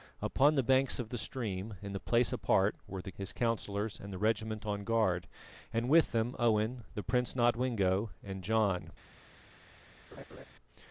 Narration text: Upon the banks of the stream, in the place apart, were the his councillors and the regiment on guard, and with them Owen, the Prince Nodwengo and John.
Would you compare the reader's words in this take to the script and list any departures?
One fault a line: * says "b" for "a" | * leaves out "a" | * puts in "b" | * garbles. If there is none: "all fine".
all fine